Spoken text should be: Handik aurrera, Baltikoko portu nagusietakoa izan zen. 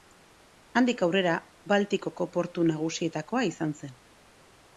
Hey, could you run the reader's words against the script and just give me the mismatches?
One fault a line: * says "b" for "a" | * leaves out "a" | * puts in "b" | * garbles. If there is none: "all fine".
all fine